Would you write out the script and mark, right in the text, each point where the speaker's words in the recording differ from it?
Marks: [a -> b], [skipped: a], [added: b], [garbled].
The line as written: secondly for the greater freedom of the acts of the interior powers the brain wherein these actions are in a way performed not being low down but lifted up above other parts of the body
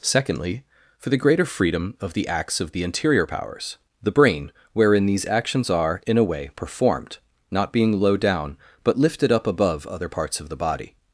secondly for the greater freedom of the acts of the interior powers the brain wherein these actions are in a way performed not being low down but lifted up above other parts of the body